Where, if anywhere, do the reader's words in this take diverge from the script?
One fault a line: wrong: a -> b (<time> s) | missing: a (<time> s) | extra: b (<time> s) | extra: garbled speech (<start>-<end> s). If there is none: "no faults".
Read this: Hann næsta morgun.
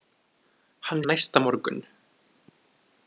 no faults